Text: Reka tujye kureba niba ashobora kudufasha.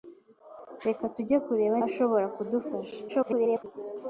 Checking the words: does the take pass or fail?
fail